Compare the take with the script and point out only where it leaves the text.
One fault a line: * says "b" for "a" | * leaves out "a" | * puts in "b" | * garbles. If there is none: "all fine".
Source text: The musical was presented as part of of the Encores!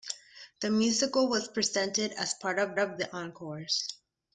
all fine